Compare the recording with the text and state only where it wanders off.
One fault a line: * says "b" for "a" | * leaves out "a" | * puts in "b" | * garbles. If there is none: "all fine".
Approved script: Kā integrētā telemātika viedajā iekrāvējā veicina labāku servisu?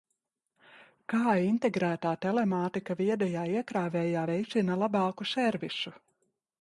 all fine